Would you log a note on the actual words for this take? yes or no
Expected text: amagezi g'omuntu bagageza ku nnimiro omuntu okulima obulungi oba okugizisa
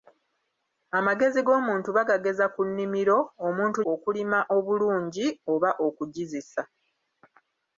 no